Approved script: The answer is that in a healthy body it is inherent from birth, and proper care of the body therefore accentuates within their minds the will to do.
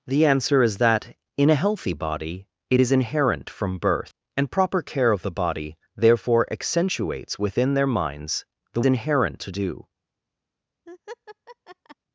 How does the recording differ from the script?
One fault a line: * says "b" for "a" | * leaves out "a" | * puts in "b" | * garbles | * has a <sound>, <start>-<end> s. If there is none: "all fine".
* says "inherent" for "will"
* has a laugh, 10.9-12.0 s